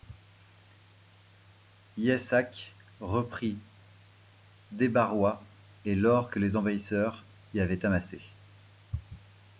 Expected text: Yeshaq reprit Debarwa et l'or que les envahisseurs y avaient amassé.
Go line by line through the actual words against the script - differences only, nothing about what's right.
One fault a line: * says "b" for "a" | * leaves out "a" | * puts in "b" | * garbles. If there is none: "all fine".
all fine